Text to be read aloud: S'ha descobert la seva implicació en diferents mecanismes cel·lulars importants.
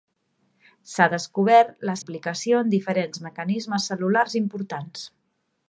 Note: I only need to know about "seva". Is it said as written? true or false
false